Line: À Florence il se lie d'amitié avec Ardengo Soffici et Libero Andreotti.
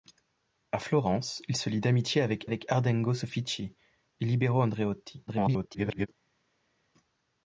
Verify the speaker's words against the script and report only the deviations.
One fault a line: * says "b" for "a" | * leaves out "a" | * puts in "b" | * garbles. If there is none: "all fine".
* puts in "avec"
* garbles